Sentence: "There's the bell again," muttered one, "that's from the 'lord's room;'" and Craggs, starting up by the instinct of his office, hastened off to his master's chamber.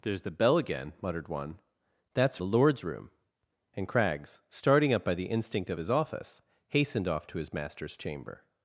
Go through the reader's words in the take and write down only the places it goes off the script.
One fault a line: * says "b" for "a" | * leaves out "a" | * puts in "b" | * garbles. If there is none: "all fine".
* leaves out "from"